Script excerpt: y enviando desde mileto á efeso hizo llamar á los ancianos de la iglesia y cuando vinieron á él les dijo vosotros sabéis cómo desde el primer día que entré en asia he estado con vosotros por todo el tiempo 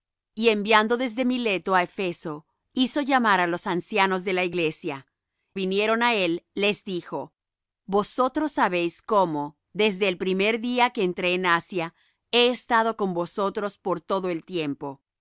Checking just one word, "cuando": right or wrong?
wrong